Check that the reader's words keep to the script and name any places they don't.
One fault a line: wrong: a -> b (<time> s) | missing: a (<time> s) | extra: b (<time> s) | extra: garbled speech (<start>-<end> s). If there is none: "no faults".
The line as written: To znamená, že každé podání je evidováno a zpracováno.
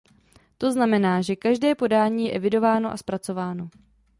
no faults